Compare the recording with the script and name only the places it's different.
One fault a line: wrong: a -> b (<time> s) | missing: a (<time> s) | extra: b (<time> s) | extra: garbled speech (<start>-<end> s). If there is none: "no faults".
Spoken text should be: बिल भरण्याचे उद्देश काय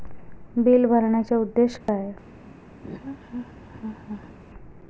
no faults